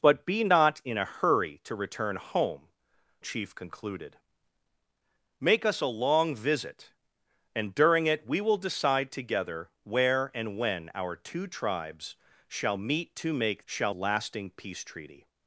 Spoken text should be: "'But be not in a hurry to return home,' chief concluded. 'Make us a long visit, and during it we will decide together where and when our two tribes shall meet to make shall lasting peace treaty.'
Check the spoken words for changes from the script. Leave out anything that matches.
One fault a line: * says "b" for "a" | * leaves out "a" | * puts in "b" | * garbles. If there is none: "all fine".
all fine